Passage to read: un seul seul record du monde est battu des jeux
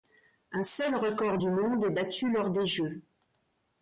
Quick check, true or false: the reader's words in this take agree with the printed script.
false